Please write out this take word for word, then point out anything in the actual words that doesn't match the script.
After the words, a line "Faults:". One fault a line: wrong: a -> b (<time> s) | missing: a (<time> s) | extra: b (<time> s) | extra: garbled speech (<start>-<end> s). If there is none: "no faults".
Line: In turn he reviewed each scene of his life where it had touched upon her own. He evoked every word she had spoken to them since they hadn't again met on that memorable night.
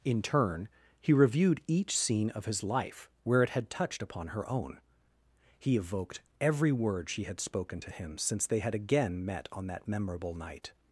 In turn he reviewed each scene of his life where it had touched upon her own. He evoked every word she had spoken to him since they had again met on that memorable night.
Faults:
wrong: them -> him (7.9 s)
wrong: hadn't -> had (8.6 s)